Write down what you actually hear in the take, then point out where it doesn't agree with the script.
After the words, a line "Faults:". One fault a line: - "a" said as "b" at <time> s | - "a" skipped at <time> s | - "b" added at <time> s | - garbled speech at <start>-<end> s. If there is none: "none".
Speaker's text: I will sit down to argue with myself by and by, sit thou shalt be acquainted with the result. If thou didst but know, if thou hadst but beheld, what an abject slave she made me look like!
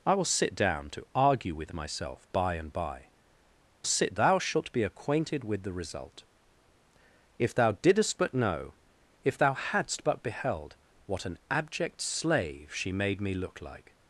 I will sit down to argue with myself by and by, sit thou shalt be acquainted with the result. If thou didst but know, if thou hadst but beheld, what an abject slave she made me look like!
Faults:
none